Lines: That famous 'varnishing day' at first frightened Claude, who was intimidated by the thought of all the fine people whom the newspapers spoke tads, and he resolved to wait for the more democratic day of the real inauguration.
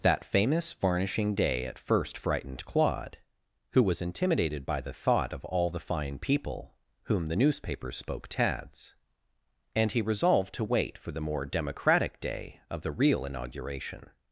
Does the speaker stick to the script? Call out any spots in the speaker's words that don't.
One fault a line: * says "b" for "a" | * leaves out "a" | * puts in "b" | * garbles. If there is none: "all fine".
all fine